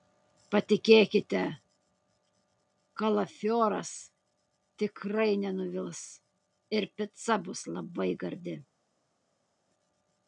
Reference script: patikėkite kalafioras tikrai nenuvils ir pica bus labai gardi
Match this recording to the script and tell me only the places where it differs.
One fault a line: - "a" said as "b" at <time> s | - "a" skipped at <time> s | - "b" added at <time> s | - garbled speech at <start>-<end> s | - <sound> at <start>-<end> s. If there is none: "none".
none